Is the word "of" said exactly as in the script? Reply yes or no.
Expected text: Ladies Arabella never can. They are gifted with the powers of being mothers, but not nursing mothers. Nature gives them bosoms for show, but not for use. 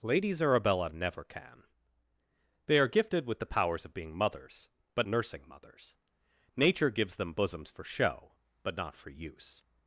yes